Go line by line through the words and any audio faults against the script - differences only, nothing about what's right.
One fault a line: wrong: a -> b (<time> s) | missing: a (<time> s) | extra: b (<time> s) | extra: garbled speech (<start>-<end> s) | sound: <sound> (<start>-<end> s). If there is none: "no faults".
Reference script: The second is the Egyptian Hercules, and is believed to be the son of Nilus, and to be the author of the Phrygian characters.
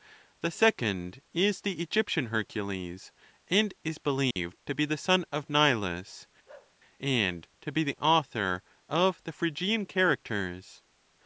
sound: dropout (4.3-4.4 s)
sound: bark (6.5-6.8 s)